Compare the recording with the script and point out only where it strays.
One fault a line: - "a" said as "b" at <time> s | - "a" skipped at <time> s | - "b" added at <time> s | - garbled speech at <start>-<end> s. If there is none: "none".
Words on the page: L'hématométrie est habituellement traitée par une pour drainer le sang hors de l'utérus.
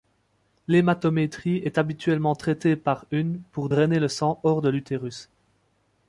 none